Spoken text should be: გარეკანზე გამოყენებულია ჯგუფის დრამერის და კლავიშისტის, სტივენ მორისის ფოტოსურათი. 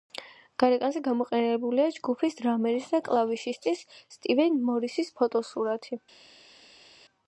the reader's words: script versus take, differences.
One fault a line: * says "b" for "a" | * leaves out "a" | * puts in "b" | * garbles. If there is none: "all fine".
all fine